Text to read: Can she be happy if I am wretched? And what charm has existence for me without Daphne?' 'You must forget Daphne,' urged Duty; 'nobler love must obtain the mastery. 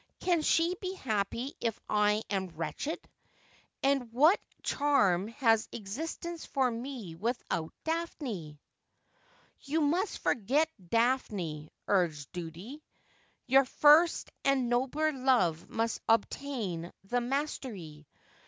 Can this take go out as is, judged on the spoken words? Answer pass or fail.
fail